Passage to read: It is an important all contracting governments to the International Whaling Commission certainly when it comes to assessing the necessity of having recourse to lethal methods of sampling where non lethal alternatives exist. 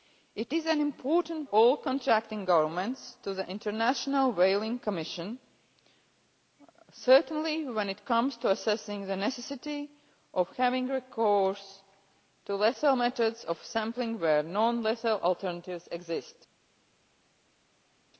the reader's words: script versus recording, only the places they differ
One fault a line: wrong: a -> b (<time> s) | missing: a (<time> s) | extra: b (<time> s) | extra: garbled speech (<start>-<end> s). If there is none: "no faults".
no faults